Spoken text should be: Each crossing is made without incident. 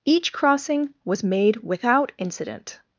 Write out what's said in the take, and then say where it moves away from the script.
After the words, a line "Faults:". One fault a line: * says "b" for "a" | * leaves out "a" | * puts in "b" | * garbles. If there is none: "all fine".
Each crossing was made without incident.
Faults:
* says "was" for "is"